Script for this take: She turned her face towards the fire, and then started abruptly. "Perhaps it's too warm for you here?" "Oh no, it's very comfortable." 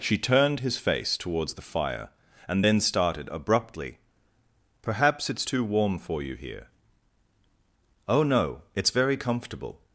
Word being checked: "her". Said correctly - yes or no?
no